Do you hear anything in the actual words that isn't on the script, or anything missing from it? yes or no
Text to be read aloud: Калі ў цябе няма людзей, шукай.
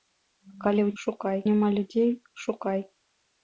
yes